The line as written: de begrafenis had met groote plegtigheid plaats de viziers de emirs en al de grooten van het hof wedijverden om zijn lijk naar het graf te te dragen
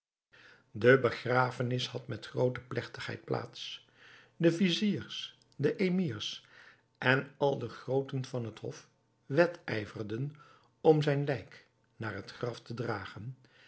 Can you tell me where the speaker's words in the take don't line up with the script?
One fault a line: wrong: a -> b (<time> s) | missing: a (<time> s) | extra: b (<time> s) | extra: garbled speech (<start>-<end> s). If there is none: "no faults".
missing: te (12.7 s)